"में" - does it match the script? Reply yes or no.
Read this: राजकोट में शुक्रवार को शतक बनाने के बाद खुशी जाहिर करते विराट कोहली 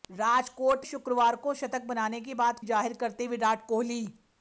no